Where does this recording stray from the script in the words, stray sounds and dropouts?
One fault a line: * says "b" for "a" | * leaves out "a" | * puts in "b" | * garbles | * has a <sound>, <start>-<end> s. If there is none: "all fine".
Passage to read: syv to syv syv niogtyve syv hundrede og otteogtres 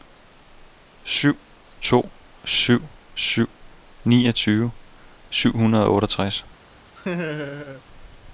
* has a laugh, 7.0-7.8 s